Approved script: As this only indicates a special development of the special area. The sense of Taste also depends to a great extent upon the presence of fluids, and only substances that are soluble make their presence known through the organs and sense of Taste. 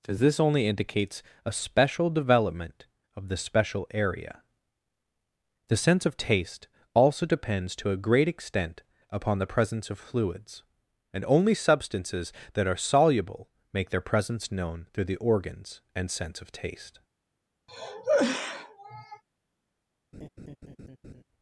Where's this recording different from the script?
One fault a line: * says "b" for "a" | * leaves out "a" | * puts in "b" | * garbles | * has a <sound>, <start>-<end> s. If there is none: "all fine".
* has a cough, 17.7-19.2 s
* has a laugh, 20.1-21.2 s